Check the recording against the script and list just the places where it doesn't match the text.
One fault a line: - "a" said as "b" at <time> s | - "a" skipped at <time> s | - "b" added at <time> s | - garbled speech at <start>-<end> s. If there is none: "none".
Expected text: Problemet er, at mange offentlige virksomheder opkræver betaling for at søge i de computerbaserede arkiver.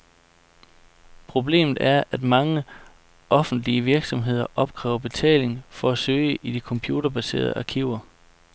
none